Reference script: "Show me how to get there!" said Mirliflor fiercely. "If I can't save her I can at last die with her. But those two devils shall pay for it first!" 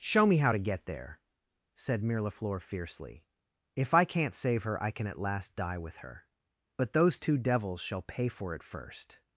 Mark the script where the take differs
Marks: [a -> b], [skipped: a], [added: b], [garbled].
"Show me how to get there!" said Mirliflor fiercely. "If I can't save her I can at last die with her. But those two devils shall pay for it first!"